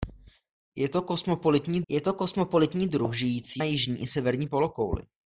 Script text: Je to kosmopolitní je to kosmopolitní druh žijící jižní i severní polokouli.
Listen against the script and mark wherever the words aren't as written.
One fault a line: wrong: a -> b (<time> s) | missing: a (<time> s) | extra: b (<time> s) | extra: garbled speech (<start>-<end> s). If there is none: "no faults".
no faults